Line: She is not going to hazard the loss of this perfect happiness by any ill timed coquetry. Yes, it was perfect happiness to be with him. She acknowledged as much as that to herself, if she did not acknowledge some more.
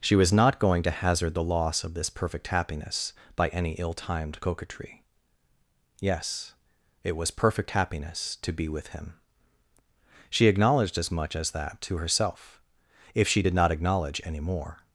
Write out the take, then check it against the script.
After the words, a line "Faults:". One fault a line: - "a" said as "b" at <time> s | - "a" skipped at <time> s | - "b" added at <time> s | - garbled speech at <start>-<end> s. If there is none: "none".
She was not going to hazard the loss of this perfect happiness by any ill timed coquetry. Yes, it was perfect happiness to be with him. She acknowledged as much as that to herself, if she did not acknowledge any more.
Faults:
- "is" said as "was" at 0.1 s
- "some" said as "any" at 14.2 s